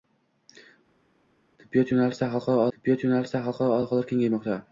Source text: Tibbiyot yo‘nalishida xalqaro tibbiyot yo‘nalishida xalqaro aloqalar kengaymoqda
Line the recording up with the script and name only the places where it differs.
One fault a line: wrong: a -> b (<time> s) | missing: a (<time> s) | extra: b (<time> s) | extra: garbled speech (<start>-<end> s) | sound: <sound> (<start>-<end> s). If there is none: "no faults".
no faults